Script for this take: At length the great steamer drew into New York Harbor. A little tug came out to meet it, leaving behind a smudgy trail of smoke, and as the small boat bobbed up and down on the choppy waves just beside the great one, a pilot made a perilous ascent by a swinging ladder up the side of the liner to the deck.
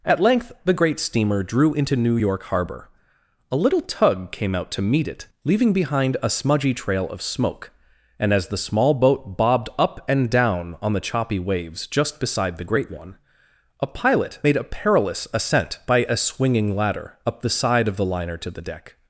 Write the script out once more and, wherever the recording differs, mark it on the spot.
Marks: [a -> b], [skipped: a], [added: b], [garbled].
At length the great steamer drew into New York Harbor. A little tug came out to meet it, leaving behind a smudgy trail of smoke, and as the small boat bobbed up and down on the choppy waves just beside the great one, a pilot made a perilous ascent by a swinging ladder up the side of the liner to the deck.